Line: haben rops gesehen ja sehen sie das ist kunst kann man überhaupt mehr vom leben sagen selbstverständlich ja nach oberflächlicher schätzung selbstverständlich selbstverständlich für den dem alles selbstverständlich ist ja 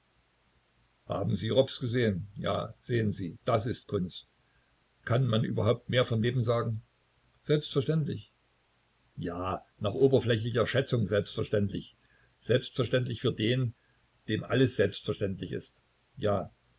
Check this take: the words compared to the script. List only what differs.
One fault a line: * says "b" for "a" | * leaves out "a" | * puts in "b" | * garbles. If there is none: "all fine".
* puts in "sie"